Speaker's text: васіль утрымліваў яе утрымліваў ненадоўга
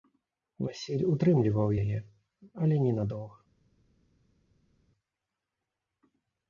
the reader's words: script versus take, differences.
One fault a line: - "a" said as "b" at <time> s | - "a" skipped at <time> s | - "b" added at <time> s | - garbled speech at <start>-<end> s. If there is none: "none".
- "утрымліваў" said as "але" at 2.6 s